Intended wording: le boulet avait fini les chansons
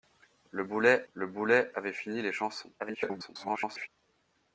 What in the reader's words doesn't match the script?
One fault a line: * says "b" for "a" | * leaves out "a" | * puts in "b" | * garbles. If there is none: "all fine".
* puts in "le boulet"
* garbles